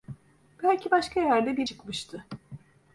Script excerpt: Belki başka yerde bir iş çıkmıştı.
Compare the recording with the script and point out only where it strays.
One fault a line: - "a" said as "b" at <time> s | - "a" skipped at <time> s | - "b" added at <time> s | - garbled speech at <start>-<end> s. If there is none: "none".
- "iş" skipped at 1.7 s